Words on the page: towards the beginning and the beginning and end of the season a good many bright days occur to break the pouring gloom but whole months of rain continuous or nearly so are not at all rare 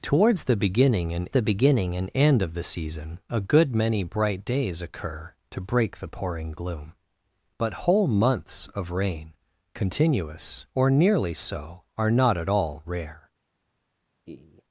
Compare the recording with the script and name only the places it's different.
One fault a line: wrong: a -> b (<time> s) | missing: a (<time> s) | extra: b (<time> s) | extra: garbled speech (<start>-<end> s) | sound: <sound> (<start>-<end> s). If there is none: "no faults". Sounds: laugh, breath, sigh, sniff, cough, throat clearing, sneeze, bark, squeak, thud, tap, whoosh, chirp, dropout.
sound: laugh (14.3-14.6 s)